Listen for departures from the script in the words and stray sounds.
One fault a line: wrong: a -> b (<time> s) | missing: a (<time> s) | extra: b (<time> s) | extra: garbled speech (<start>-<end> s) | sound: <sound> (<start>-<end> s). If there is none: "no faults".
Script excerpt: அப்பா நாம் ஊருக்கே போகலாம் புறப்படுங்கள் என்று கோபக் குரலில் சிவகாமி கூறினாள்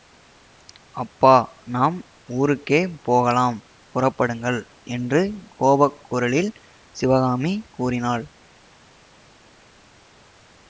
no faults